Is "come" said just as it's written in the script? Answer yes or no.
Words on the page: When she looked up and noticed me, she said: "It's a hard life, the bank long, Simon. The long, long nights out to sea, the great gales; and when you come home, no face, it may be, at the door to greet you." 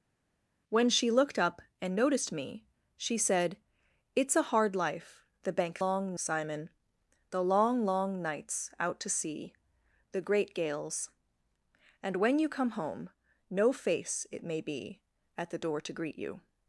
yes